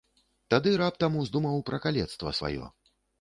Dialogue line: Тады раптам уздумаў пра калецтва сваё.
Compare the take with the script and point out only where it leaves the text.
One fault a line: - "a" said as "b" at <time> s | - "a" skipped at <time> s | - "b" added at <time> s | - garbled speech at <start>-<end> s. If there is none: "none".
none